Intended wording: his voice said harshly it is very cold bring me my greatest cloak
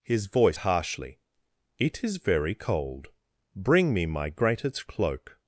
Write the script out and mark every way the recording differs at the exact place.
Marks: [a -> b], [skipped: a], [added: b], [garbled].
his voice [skipped: said] harshly it is very cold bring me my greatest cloak